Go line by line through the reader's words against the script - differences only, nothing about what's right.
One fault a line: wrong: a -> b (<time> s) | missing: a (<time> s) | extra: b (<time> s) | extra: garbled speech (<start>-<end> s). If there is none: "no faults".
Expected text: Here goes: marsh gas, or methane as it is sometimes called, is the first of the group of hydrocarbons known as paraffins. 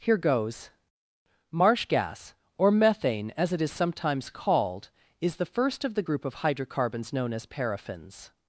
no faults